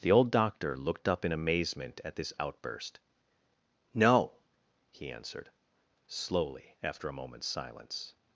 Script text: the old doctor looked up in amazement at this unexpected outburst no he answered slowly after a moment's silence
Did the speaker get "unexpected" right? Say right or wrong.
wrong